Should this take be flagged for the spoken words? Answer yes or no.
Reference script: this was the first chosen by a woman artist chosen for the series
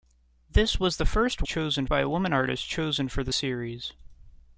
no